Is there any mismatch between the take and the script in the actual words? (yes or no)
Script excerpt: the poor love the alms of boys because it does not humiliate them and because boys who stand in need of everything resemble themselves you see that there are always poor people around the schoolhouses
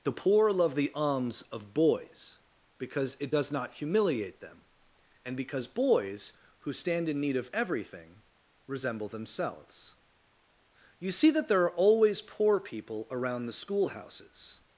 no